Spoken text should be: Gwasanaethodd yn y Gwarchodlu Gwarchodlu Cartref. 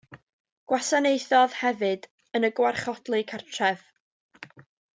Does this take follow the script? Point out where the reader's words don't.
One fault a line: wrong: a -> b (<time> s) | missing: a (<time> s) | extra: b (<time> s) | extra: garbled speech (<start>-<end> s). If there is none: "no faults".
extra: hefyd (1.6 s)
missing: Gwarchodlu (3.2 s)